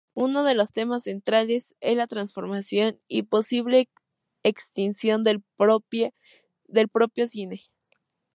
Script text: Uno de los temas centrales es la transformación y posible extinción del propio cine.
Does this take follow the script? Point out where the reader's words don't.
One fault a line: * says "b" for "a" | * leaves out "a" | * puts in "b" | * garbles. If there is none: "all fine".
all fine